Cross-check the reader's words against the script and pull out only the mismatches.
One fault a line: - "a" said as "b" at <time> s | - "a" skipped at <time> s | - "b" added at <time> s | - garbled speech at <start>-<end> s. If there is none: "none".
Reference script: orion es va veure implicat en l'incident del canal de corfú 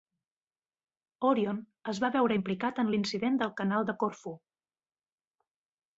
none